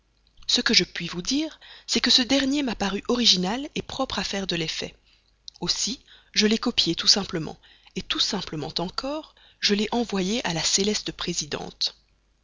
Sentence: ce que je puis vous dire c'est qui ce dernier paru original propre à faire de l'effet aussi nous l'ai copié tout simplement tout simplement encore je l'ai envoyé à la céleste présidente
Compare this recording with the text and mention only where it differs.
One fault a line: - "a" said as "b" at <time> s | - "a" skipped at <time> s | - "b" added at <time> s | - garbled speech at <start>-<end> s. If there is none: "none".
- "qui" said as "que" at 2.0 s
- "m'a" added at 2.6 s
- "nous" said as "je" at 6.3 s